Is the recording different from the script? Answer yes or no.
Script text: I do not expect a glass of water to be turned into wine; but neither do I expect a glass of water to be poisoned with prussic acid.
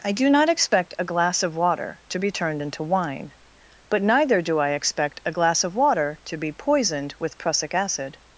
no